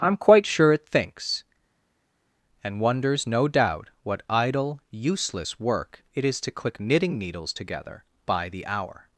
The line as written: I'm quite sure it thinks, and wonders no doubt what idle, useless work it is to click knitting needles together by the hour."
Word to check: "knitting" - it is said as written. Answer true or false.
true